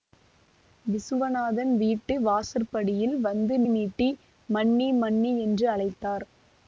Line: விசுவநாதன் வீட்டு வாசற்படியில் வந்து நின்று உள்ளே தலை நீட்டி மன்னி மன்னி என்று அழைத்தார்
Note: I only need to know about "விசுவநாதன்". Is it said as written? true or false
true